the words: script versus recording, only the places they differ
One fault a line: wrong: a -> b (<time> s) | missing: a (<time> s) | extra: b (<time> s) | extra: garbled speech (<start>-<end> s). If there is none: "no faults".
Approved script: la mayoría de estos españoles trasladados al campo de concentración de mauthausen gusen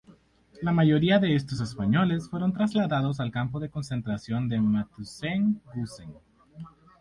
extra: fueron (2.3 s)